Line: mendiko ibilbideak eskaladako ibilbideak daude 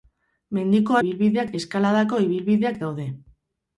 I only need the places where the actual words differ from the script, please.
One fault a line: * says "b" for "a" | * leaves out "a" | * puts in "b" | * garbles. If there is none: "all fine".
all fine